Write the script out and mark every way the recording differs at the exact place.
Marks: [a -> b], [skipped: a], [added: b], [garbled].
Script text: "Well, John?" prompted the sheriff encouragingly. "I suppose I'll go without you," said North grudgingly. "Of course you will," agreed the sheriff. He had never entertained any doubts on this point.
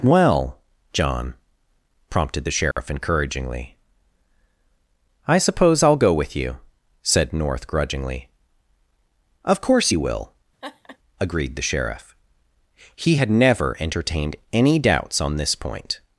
"Well, John?" prompted the sheriff encouragingly. "I suppose I'll go [without -> with] you," said North grudgingly. "Of course you will," agreed the sheriff. He had never entertained any doubts on this point.